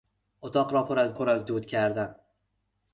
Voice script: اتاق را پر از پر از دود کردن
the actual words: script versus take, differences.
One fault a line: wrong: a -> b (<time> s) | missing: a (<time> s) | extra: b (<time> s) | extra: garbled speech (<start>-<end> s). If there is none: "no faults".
no faults